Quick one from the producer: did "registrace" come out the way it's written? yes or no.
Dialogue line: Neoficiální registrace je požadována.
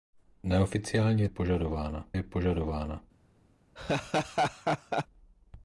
no